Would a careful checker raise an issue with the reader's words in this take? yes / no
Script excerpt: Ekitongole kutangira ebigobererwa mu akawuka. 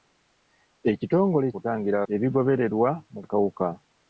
no